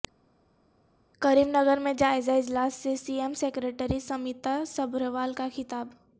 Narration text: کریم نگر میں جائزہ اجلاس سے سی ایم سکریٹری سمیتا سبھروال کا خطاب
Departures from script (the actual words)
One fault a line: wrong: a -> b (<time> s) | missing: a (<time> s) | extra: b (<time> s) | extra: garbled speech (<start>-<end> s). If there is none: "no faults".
no faults